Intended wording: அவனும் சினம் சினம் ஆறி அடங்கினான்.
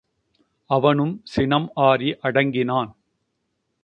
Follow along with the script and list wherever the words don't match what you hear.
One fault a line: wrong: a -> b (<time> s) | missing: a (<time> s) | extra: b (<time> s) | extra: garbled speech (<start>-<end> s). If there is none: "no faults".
missing: சினம் (1.7 s)